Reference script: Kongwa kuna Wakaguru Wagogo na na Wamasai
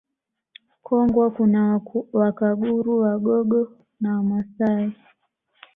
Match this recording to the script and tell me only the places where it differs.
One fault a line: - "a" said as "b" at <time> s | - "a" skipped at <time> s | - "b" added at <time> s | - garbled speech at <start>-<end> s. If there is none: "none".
- "na" skipped at 4.2 s